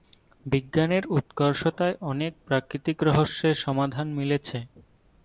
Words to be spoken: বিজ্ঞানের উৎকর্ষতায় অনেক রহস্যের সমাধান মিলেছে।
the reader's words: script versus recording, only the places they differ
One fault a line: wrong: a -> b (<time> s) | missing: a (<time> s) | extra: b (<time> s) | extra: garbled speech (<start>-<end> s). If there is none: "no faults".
extra: প্রাকৃতিক (2.5 s)